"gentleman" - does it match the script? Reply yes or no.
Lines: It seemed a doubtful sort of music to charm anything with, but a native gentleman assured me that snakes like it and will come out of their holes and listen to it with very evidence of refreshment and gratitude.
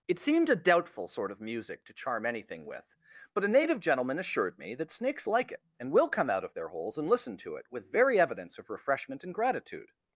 yes